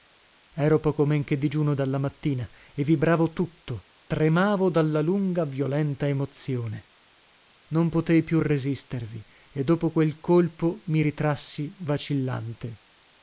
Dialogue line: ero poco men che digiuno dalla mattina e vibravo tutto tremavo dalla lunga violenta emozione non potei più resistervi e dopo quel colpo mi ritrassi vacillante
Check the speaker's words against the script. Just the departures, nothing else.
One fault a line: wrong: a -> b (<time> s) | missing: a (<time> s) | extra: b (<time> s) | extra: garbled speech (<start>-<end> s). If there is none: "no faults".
no faults